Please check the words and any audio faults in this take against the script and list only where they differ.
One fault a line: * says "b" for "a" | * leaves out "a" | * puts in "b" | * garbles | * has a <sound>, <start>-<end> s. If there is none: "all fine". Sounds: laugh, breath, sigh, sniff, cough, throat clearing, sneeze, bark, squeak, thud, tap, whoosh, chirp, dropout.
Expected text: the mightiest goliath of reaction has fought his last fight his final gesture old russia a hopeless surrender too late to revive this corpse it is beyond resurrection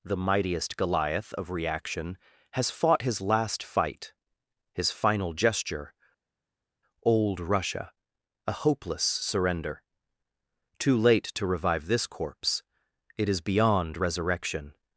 all fine